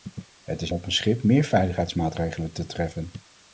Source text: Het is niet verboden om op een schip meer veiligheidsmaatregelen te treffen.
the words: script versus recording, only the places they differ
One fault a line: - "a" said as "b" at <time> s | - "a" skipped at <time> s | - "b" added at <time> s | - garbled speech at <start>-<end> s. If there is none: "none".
- "niet verboden om" skipped at 0.7 s